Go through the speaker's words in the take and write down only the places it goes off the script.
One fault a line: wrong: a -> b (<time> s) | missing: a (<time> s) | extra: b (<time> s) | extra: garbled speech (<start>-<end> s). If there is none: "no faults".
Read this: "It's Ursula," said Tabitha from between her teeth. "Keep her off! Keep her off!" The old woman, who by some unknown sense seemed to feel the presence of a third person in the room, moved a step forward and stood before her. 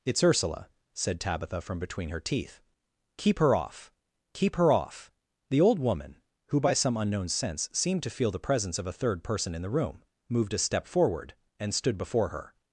no faults